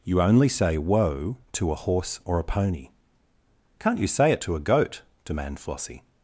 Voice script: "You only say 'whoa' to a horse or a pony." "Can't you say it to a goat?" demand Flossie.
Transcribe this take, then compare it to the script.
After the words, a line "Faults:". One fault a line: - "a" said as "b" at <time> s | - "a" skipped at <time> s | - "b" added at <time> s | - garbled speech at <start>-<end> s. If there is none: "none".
"You only say 'whoa' to a horse or a pony." "Can't you say it to a goat?" demand Flossie.
Faults:
none